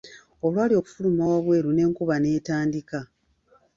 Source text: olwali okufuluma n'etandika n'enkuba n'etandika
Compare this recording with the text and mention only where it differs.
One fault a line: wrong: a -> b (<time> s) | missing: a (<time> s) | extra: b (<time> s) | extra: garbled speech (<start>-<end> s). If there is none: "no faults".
wrong: n'etandika -> wabweru (1.3 s)